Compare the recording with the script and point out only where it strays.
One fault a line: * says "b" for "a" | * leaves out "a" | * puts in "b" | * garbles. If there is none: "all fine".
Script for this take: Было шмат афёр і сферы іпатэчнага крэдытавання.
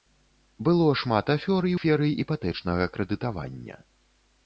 all fine